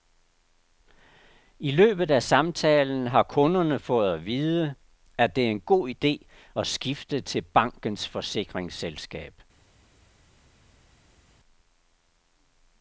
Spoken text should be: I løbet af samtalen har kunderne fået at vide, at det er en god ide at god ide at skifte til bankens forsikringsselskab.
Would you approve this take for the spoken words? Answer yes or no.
no